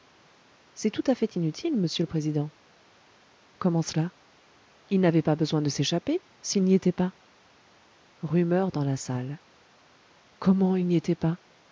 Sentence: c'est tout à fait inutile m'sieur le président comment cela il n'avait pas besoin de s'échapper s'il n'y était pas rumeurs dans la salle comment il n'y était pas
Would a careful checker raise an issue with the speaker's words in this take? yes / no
no